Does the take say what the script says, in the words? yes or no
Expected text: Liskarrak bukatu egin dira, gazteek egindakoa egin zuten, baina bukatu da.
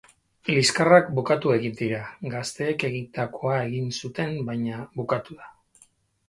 yes